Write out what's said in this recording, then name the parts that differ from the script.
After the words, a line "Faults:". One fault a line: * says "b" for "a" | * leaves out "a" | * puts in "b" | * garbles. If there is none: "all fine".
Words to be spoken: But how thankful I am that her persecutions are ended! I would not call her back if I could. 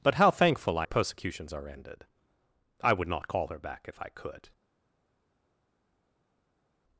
But how thankful I persecutions are ended! I would not call her back if I could.
Faults:
* leaves out "am that her"